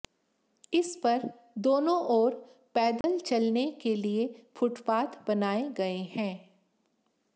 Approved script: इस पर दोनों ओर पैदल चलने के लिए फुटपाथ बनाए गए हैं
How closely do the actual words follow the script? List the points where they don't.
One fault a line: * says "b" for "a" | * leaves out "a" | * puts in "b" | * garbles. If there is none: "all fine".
all fine